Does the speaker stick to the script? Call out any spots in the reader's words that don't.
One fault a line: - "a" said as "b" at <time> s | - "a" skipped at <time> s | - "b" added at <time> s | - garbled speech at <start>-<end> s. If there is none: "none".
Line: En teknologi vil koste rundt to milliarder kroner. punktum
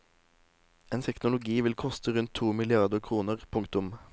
none